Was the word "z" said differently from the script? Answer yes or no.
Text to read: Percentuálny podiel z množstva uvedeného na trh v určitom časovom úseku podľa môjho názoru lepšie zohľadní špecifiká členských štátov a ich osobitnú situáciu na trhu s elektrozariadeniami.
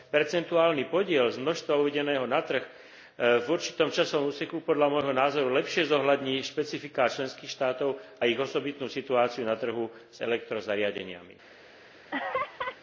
no